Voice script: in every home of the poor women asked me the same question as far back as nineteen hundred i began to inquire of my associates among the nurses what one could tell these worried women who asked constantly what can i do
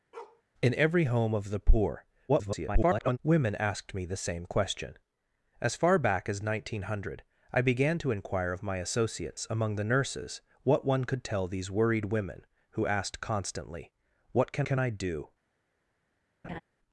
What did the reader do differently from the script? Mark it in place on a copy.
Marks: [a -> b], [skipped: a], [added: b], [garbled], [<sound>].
[bark] in every home of the poor [garbled] women asked me the same question as far back as nineteen hundred i began to inquire of my associates among the nurses what one could tell these worried women who asked constantly what can [added: can] i do [laugh]